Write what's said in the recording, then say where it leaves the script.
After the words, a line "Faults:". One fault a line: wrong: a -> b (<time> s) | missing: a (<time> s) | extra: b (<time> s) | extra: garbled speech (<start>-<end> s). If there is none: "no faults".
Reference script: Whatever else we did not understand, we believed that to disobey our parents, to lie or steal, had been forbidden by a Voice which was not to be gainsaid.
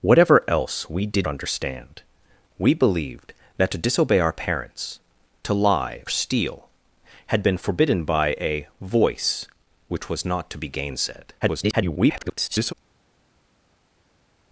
Whatever else we did understand, we believed that to disobey our parents, to lie steal, had been forbidden by a Voice which was not to be gainsaid. [garbled]
Faults:
missing: not (1.3 s)
missing: or (6.0 s)
extra: garbled speech (11.4-12.7 s)